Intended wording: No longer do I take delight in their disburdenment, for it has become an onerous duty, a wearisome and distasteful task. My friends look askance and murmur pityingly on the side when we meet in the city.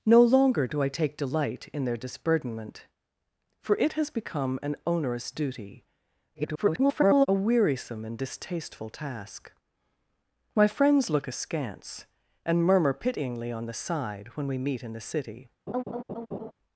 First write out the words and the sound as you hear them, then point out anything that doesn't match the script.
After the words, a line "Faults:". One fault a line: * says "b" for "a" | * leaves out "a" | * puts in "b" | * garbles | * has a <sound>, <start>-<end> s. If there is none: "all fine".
No longer do I take delight in their disburdenment, for it has become an onerous duty, [garbled] a wearisome and distasteful task. My friends look askance and murmur pityingly on the side when we meet in the city.
Faults:
* garbles
* has a laugh, 15.7-16.5 s